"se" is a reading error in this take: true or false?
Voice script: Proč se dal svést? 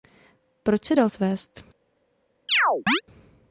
false